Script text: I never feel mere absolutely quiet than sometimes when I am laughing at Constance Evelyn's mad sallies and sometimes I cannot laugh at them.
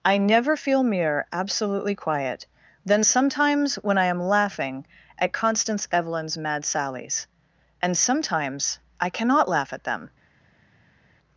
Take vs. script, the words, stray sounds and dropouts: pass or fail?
pass